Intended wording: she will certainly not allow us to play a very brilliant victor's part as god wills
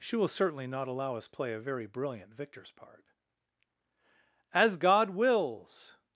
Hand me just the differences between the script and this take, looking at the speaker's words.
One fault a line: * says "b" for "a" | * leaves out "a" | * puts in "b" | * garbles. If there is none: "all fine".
* leaves out "to"